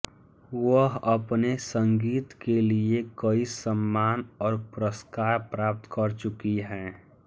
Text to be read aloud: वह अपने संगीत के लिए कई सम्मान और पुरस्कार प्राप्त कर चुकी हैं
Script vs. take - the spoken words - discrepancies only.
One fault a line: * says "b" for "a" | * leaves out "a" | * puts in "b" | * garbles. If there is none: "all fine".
all fine